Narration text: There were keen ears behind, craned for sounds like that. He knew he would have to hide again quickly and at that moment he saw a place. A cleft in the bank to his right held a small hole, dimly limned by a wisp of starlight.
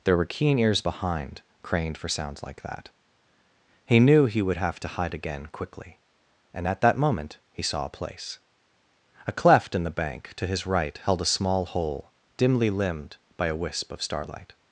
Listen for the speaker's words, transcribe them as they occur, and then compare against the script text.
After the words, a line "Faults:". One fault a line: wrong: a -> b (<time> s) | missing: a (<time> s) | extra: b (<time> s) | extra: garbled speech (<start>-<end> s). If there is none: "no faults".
There were keen ears behind, craned for sounds like that. He knew he would have to hide again quickly and at that moment he saw a place. A cleft in the bank to his right held a small hole, dimly limned by a wisp of starlight.
Faults:
no faults